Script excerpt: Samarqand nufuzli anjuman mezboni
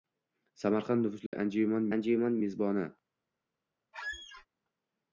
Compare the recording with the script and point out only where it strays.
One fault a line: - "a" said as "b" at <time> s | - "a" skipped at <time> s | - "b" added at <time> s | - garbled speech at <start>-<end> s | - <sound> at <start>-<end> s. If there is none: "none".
- dropout at 1.3-1.3 s
- "anjuman" added at 2.0 s
- squeak at 3.9-4.5 s